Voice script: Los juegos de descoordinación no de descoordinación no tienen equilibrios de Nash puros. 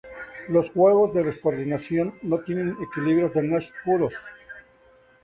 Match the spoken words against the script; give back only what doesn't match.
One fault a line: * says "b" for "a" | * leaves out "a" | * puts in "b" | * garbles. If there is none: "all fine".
* leaves out "de descoordinación no"